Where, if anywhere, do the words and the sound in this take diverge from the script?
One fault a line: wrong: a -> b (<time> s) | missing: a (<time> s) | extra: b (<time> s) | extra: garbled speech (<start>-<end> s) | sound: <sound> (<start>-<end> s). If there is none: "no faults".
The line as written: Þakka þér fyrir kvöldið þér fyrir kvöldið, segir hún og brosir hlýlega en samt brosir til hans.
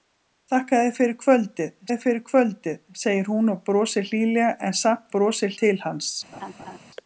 sound: laugh (6.3-6.8 s)